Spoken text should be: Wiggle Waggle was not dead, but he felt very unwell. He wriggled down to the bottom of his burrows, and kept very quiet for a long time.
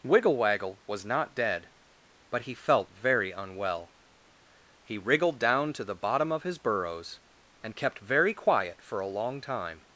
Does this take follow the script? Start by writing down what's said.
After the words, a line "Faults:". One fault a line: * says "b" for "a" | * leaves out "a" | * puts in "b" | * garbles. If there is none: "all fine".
Wiggle Waggle was not dead, but he felt very unwell. He wriggled down to the bottom of his burrows, and kept very quiet for a long time.
Faults:
all fine